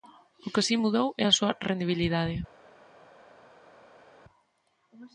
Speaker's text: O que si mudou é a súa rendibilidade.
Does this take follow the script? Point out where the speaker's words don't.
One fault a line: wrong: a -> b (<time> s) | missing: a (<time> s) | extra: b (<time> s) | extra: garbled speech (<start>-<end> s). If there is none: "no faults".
no faults